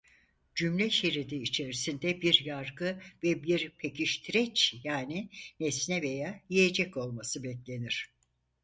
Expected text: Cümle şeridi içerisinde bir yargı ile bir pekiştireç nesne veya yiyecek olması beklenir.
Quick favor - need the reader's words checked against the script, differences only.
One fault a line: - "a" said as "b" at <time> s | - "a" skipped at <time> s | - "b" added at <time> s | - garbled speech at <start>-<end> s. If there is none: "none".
- "ile" said as "ve" at 3.2 s
- "yani" added at 4.8 s